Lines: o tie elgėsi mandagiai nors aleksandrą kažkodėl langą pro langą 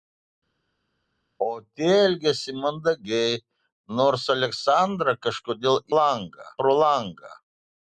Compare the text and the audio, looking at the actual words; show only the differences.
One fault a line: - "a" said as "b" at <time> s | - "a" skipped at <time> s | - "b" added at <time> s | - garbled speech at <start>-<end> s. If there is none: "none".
none